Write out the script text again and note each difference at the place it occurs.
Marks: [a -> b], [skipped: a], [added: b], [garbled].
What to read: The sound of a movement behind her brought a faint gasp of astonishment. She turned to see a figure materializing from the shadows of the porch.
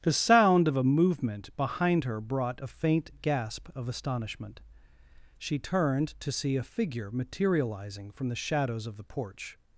The sound of a movement behind her brought a faint gasp of astonishment. She turned to see a figure materializing from the shadows of the porch.